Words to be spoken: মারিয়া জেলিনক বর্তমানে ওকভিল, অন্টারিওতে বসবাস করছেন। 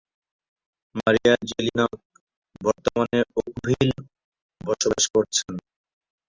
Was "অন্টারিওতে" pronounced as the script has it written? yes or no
no